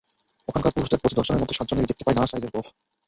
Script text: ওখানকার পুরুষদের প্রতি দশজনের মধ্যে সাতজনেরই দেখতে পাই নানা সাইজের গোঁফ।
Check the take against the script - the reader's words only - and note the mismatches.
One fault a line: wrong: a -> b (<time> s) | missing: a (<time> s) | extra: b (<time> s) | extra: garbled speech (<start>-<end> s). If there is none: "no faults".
no faults